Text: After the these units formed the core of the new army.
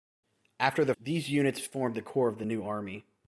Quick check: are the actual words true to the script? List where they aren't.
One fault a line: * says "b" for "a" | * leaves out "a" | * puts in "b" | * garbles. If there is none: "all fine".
all fine